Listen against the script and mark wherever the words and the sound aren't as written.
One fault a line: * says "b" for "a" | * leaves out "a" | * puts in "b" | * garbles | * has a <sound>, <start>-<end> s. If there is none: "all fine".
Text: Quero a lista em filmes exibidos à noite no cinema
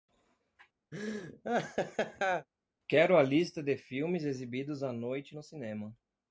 * has a laugh, 0.9-2.5 s
* says "de" for "em"